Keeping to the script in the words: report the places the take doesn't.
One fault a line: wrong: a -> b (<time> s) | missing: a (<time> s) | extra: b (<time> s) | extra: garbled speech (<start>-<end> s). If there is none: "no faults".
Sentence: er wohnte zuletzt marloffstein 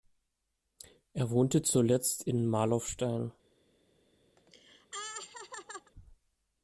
extra: in (2.2 s)